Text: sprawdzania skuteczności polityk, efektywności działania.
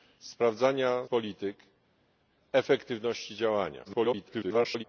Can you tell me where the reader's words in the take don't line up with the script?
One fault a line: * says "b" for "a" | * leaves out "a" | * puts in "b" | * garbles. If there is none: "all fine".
* leaves out "skuteczności"
* garbles